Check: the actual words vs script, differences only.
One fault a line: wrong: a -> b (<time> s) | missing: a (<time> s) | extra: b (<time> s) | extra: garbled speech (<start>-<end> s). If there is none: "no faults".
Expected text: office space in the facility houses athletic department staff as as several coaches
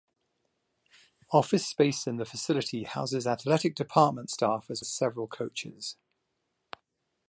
no faults